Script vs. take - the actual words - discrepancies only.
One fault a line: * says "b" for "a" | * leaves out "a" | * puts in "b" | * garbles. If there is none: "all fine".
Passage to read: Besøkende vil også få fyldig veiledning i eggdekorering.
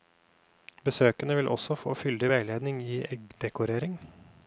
all fine